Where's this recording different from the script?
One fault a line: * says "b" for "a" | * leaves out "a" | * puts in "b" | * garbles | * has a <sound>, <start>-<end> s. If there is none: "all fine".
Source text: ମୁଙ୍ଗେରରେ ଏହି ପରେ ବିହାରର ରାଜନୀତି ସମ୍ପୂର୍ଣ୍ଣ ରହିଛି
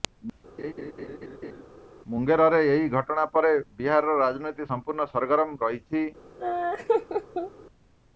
* has a laugh, 0.6-1.6 s
* puts in "ଘଟଣା"
* puts in "ସରଗରମ"
* has a laugh, 6.4-7.5 s